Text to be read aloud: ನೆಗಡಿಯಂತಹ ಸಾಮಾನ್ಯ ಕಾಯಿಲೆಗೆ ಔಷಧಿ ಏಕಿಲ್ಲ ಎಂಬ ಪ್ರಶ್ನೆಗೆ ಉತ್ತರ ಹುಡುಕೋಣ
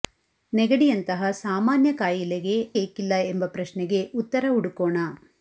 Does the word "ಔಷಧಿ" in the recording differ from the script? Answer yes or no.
yes